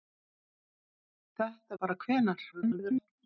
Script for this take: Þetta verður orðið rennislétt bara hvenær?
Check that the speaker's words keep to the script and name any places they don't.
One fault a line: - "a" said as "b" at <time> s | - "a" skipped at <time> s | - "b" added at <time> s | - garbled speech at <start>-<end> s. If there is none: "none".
- "verður orðið rennislétt" skipped at 1.8 s
- garbled speech at 2.5-3.1 s